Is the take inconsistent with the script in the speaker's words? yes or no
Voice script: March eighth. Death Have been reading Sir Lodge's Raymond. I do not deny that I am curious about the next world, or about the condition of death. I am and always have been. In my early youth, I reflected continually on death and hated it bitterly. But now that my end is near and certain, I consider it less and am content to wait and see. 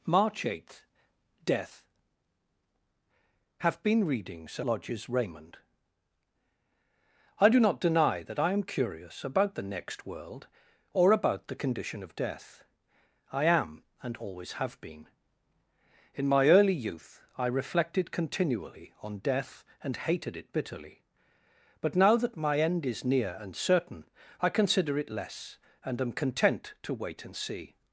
no